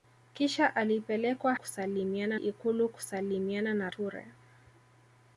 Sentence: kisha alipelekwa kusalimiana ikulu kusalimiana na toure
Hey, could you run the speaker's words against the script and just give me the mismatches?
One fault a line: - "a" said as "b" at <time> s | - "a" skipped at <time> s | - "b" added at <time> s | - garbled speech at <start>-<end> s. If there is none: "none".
none